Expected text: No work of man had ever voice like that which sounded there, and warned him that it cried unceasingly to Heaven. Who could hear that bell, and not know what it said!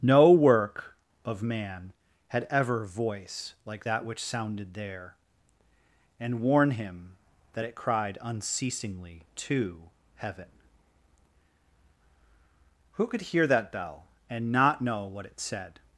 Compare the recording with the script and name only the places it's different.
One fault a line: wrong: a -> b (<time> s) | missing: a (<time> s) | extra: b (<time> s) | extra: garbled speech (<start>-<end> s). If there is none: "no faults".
wrong: warned -> warn (6.4 s)